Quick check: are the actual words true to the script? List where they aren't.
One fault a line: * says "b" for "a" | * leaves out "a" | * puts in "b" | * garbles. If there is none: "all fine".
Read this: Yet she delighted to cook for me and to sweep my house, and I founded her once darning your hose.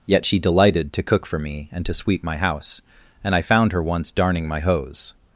* says "found" for "founded"
* says "my" for "your"